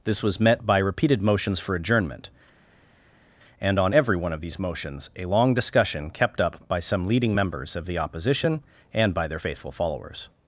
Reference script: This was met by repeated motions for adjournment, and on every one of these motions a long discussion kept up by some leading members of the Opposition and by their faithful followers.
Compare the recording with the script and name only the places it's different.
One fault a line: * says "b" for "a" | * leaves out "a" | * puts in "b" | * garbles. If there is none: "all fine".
all fine